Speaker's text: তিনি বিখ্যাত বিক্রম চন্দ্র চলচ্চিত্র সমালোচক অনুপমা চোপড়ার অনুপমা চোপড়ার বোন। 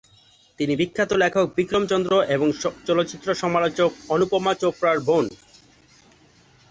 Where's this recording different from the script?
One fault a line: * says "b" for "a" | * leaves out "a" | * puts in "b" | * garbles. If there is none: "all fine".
* puts in "লেখক"
* puts in "এবং"
* leaves out "অনুপমা চোপড়ার"